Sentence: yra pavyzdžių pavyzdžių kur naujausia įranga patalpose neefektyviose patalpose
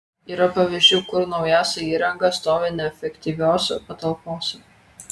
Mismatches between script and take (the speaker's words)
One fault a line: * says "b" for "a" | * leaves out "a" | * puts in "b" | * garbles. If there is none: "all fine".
* leaves out "pavyzdžių"
* says "stovi" for "patalpose"